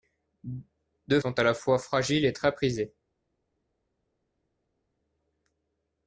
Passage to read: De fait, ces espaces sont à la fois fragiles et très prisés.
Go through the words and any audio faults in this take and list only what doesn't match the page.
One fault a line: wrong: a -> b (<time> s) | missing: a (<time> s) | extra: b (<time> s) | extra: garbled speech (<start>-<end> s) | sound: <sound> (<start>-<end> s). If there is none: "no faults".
missing: fait ces espaces (1.2 s)